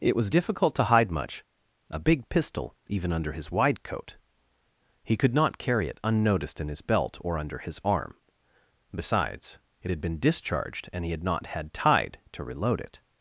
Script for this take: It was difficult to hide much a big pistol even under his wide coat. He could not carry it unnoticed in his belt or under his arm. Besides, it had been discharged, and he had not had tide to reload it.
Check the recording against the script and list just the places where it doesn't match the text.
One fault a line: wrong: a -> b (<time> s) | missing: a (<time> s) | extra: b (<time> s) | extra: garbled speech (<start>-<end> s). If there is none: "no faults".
no faults